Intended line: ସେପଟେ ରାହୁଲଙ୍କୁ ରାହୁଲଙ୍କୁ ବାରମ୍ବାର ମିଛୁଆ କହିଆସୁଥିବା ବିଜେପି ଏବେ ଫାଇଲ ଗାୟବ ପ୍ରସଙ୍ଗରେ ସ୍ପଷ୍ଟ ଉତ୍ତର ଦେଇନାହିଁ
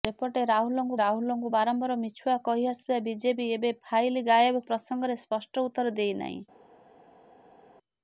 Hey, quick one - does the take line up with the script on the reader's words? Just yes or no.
yes